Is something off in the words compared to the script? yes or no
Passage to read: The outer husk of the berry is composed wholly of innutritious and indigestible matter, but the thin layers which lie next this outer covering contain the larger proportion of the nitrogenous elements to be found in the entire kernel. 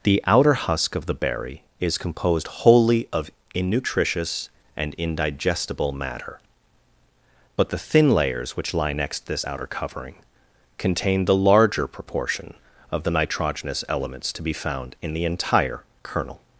no